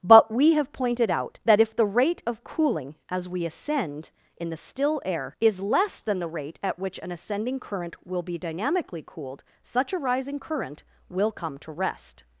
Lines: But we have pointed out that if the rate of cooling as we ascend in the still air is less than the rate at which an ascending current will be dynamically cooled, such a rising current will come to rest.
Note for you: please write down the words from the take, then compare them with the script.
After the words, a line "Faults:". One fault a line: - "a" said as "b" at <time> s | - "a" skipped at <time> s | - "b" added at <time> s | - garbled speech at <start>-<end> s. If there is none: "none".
But we have pointed out that if the rate of cooling as we ascend in the still air is less than the rate at which an ascending current will be dynamically cooled, such a rising current will come to rest.
Faults:
none